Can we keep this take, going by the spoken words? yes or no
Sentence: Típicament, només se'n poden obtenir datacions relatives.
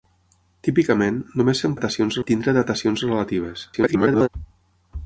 no